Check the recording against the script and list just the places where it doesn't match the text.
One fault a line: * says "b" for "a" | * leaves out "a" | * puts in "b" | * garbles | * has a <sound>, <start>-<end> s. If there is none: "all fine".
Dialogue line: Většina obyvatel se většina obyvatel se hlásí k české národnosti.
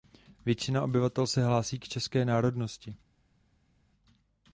* leaves out "většina obyvatel se"